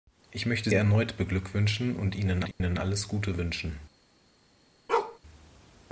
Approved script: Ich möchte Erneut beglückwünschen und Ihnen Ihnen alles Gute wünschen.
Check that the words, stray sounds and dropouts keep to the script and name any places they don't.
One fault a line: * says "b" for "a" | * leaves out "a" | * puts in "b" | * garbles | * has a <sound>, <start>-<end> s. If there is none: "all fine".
* has a dropout, 2.5-2.6 s
* has a bark, 4.9-5.2 s